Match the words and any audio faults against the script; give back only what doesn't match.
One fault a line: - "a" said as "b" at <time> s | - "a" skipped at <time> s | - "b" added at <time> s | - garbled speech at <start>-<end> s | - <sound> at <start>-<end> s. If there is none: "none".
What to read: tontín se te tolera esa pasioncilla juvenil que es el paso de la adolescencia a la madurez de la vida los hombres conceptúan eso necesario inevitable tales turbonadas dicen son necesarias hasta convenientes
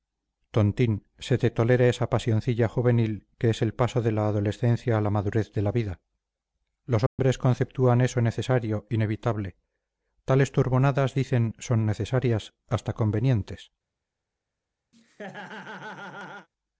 - dropout at 7.1-7.2 s
- laugh at 14.9-16.5 s